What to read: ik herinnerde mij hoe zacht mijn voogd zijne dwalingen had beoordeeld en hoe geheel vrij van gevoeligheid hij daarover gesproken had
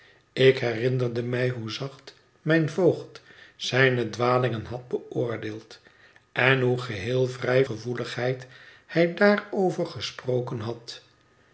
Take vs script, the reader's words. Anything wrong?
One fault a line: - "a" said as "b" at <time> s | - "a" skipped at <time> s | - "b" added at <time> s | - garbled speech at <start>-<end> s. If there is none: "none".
- "van" skipped at 7.7 s